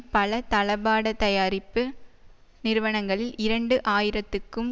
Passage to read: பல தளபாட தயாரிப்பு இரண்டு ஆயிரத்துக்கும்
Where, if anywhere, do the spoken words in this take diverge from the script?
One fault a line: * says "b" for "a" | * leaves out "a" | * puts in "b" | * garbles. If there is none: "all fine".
* puts in "நிறுவனங்களில்"